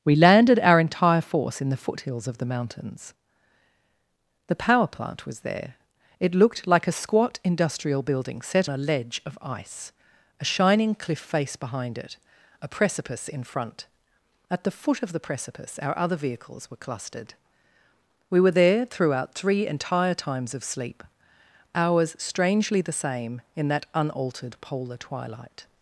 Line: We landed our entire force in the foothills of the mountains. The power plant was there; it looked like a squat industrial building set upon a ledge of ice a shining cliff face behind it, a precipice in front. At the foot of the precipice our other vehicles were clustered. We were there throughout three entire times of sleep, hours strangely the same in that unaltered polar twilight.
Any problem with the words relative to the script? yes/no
yes